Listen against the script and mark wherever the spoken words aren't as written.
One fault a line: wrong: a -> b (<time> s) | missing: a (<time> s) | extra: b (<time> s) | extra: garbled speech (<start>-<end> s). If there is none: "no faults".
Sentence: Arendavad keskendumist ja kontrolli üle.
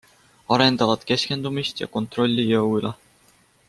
extra: jõu (2.5 s)